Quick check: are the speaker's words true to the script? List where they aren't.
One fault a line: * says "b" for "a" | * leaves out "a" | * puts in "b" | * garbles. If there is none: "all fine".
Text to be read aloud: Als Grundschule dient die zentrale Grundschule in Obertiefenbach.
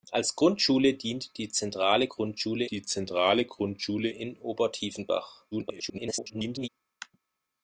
* puts in "die zentrale Grundschule"
* garbles